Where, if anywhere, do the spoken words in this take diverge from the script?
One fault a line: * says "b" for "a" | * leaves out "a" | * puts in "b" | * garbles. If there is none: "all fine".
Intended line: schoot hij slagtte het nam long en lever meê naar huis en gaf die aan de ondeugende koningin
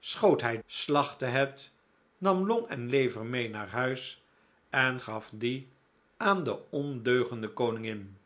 all fine